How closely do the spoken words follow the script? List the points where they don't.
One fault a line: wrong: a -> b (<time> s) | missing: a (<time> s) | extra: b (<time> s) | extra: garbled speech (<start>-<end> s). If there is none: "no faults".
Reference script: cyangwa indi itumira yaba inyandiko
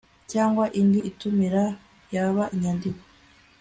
no faults